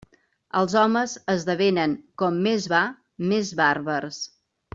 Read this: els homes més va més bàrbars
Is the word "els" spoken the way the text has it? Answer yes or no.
yes